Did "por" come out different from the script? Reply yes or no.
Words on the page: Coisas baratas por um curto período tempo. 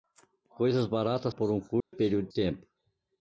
no